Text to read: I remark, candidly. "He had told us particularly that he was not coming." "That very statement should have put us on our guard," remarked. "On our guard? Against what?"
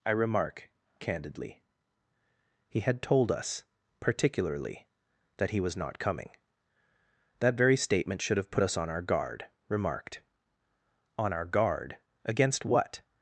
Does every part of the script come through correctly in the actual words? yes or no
yes